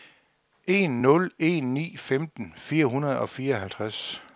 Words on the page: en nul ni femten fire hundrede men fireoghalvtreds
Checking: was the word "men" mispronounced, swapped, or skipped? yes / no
yes